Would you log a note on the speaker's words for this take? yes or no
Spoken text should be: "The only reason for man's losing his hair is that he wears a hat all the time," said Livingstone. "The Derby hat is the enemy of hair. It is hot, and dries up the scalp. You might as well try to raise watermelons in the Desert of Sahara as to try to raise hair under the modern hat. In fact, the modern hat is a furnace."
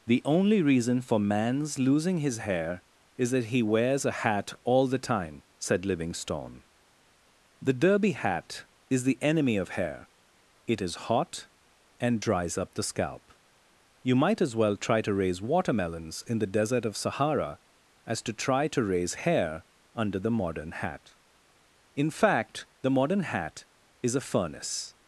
no